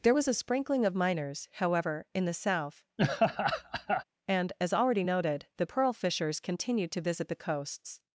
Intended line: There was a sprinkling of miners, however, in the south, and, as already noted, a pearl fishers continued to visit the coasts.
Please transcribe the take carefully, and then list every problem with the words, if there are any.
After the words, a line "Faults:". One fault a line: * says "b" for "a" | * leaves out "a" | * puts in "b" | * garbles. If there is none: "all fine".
There was a sprinkling of miners, however, in the south, and, as already noted, the pearl fishers continued to visit the coasts.
Faults:
* says "the" for "a"